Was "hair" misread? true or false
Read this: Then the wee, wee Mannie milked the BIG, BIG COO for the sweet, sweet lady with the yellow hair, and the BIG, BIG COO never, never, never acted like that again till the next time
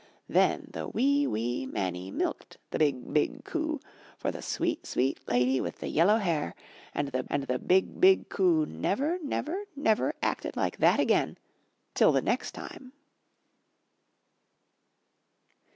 false